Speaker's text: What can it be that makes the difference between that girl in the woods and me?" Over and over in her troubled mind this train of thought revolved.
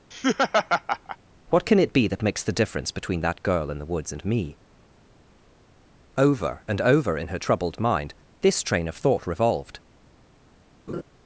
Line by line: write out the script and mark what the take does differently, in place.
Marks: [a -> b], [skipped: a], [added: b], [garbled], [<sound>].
[laugh] What can it be that makes the difference between that girl in the woods and me?" Over and over in her troubled mind this train of thought revolved. [laugh]